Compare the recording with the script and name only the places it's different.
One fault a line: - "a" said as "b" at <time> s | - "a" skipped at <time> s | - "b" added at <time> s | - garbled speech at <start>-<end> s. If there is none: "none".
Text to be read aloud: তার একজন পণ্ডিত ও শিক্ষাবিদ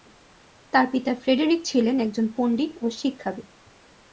- "পিতা ফ্রেডেরিক ছিলেন" added at 0.9 s